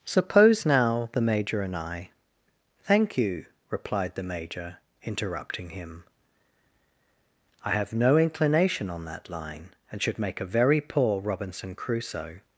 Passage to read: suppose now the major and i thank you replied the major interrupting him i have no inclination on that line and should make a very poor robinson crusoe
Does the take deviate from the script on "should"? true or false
false